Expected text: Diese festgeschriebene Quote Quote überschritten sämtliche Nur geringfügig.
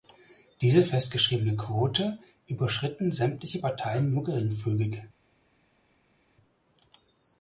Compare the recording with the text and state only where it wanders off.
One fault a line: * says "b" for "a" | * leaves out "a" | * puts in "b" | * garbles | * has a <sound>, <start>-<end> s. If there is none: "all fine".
* leaves out "Quote"
* puts in "Parteien"